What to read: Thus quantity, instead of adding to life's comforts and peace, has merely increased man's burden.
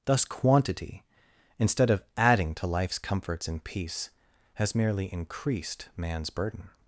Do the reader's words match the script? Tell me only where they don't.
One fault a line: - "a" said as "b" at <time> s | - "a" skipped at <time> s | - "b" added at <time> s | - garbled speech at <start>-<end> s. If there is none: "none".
none